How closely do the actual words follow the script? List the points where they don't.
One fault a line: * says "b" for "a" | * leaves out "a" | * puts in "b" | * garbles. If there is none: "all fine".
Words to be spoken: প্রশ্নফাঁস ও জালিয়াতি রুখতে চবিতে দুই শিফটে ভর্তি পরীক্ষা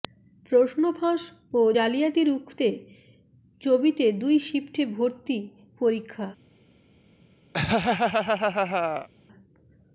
all fine